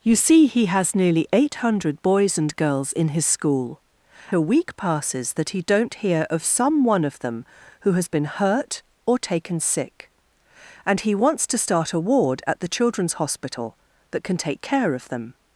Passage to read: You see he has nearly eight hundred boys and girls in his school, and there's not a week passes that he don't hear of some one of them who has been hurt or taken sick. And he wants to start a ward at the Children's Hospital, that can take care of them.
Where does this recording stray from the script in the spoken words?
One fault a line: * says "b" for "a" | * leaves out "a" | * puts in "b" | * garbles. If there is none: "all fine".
* leaves out "and there's not"